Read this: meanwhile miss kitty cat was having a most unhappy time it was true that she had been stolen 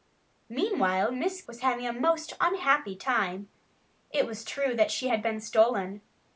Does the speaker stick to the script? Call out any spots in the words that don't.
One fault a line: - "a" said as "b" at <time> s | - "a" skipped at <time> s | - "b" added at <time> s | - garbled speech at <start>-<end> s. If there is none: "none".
- "kitty cat" skipped at 1.4 s